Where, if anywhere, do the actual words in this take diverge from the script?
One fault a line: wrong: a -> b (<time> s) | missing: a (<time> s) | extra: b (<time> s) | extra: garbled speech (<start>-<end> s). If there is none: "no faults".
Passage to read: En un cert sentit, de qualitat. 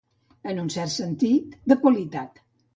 no faults